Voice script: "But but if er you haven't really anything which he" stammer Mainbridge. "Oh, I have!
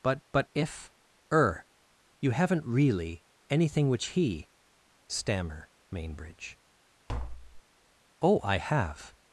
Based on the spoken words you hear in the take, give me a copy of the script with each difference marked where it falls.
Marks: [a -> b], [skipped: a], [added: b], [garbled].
"But but if er you haven't really anything which he" stammer Mainbridge. "Oh, I have!